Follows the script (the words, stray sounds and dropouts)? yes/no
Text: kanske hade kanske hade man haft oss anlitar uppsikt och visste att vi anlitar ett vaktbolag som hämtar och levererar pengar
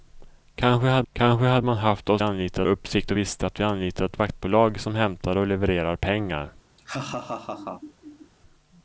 no